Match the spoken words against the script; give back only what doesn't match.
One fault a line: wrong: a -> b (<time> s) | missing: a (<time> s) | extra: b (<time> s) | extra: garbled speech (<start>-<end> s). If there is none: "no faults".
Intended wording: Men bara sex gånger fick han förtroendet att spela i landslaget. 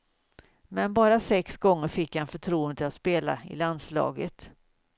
no faults